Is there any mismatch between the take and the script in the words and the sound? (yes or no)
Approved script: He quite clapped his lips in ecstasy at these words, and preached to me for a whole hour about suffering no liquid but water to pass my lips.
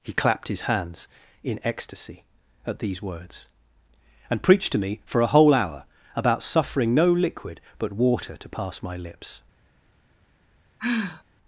yes